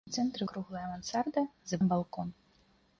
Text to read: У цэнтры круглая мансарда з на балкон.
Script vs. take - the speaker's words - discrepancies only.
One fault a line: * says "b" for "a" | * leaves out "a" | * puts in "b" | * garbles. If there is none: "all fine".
all fine